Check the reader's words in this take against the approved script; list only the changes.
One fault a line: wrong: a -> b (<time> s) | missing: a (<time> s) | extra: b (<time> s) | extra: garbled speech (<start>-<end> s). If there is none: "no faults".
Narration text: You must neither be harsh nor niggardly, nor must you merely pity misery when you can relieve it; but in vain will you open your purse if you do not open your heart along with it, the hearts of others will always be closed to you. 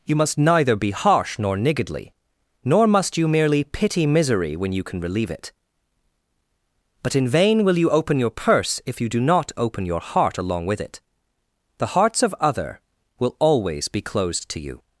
wrong: others -> other (12.4 s)